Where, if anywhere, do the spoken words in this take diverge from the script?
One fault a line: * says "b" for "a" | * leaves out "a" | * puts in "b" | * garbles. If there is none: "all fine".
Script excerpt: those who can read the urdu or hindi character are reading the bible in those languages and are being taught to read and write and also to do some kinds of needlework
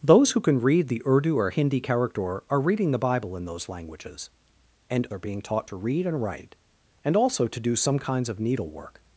all fine